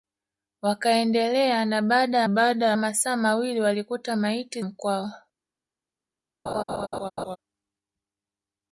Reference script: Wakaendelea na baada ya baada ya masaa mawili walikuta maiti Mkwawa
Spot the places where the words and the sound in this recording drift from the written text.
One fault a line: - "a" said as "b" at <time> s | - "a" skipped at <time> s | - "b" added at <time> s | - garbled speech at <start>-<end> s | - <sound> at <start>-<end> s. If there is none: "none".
- laugh at 6.5-7.4 s